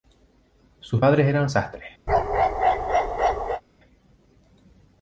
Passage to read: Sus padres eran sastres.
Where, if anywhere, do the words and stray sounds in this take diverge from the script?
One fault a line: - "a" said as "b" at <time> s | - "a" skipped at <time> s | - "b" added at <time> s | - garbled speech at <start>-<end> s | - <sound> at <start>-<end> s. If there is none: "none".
- bark at 2.1-3.6 s